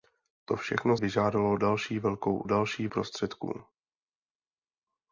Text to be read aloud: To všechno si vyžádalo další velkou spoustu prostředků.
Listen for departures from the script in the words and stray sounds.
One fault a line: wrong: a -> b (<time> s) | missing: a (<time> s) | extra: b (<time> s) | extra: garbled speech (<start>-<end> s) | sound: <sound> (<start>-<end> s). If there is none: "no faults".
missing: si (1.0 s)
wrong: spoustu -> další (2.4 s)